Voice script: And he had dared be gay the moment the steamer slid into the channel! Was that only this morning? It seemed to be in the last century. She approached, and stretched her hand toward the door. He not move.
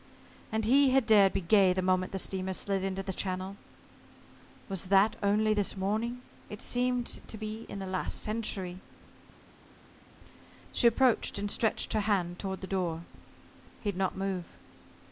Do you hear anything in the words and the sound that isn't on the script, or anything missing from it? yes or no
no